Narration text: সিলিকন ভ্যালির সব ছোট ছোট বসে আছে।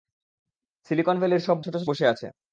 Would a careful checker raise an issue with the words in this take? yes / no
no